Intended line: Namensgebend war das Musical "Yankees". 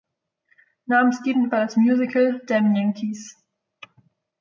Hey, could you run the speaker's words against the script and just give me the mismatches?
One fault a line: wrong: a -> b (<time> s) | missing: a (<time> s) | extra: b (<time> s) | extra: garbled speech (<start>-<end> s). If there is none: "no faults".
extra: Damn (2.4 s)